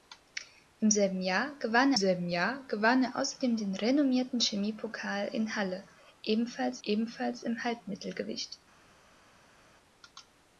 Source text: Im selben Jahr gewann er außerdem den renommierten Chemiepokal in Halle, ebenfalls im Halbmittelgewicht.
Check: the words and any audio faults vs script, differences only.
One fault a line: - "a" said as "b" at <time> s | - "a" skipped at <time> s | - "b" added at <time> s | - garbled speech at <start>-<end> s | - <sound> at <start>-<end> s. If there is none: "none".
- "selben Jahr gewann" added at 1.9 s
- "ebenfalls" added at 6.8 s